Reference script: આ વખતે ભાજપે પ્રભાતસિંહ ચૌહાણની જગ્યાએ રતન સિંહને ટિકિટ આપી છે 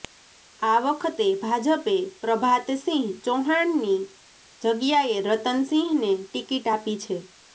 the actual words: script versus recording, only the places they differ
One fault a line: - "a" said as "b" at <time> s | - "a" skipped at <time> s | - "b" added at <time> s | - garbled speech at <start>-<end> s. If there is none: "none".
none